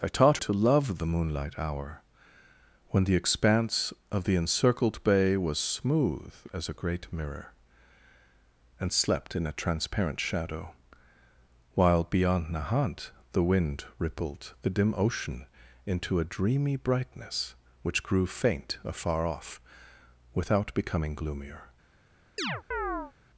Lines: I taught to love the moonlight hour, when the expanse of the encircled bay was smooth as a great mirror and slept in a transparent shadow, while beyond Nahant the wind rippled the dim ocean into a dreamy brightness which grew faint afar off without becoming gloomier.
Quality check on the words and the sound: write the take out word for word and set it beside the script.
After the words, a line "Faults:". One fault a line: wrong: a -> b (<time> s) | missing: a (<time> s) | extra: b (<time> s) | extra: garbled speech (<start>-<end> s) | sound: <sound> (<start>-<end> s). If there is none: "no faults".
I taught to love the moonlight hour, when the expanse of the encircled bay was smooth as a great mirror and slept in a transparent shadow, while beyond Nahant the wind rippled the dim ocean into a dreamy brightness which grew faint afar off without becoming gloomier.
Faults:
sound: chirp (22.4-23.1 s)